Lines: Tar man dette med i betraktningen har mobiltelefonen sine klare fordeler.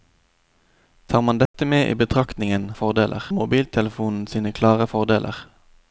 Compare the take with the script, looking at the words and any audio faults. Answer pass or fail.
fail